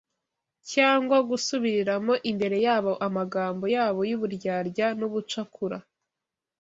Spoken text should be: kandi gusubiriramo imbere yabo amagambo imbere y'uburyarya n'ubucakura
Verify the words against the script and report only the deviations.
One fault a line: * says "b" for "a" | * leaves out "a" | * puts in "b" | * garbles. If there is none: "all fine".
* says "cyangwa" for "kandi"
* says "yabo" for "imbere"